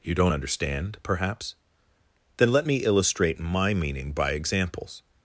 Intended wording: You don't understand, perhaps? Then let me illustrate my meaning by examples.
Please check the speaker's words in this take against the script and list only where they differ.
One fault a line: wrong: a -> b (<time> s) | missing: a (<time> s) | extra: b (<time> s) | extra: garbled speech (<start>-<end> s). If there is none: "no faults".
no faults